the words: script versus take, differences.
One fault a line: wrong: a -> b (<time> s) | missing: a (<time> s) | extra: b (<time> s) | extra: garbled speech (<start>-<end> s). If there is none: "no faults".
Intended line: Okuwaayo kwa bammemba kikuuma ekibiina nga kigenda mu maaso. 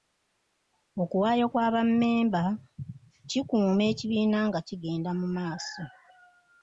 no faults